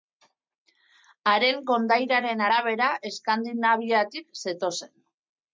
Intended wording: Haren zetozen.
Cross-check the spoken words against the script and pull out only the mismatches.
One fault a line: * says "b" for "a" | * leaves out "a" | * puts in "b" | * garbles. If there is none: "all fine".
* puts in "kondairaren arabera Eskandinaviatik"